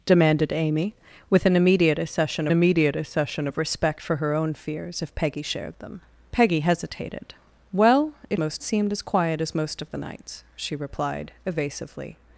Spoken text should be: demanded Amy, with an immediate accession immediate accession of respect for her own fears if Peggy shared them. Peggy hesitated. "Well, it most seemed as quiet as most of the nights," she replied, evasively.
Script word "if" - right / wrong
right